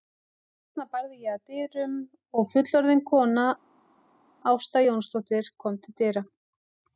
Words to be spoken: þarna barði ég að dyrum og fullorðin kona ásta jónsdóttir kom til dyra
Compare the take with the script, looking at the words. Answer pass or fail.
pass